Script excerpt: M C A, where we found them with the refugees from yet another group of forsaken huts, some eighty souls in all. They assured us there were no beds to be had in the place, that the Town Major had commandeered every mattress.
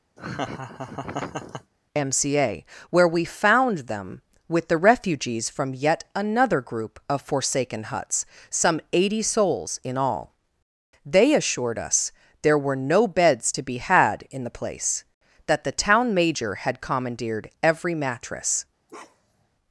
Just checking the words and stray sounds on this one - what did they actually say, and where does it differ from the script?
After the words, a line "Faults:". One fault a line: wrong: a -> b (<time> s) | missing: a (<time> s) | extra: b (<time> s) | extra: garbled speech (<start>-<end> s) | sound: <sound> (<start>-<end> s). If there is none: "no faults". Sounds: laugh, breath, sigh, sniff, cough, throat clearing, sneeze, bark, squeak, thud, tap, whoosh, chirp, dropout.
M C A, where we found them with the refugees from yet another group of forsaken huts, some eighty souls in all. They assured us there were no beds to be had in the place, that the Town Major had commandeered every mattress.
Faults:
sound: laugh (0.2-1.7 s)
sound: bark (18.9-19.5 s)